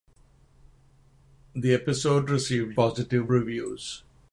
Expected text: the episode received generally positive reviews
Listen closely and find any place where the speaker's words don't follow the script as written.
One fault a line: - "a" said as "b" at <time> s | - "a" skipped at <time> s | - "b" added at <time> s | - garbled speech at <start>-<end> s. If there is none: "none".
- "generally" skipped at 2.8 s